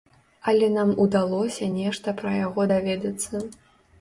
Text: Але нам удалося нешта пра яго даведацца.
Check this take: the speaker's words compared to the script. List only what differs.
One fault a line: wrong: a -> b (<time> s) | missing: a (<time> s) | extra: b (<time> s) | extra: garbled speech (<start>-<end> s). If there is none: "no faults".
no faults